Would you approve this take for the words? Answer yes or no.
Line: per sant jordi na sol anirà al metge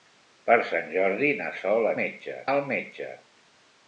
no